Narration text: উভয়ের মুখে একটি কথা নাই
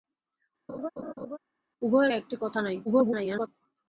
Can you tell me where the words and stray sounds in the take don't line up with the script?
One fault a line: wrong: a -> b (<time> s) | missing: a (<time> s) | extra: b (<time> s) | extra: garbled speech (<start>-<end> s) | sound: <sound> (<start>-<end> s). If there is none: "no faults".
sound: laugh (0.7-1.4 s)
missing: মুখে (2.1 s)
extra: garbled speech (2.8-3.5 s)